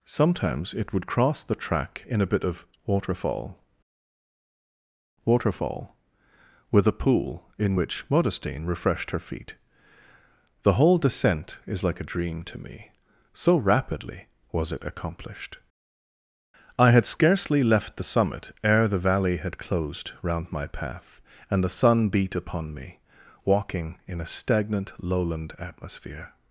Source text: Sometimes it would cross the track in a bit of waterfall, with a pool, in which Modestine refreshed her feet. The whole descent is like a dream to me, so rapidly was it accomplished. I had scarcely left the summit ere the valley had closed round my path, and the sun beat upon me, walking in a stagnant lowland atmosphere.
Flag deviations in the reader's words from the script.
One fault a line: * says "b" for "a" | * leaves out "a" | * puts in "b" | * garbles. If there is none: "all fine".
* puts in "waterfall"